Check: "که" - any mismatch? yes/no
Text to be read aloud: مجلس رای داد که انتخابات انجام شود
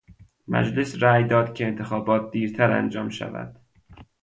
no